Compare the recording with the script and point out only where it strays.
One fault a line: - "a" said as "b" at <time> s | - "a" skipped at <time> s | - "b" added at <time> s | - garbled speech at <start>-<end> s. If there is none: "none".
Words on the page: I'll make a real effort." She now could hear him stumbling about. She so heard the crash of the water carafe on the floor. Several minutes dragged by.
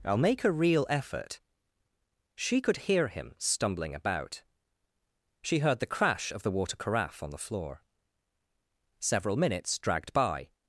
- "now" skipped at 2.6 s
- "so" skipped at 5.6 s